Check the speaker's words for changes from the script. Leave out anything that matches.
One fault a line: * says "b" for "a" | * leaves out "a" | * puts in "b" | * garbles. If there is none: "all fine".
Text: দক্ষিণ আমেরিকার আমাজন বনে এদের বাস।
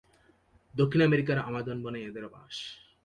all fine